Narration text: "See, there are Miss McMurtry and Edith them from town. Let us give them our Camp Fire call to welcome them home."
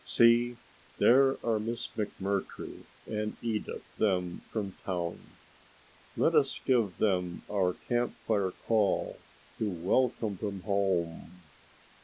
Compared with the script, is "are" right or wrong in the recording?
right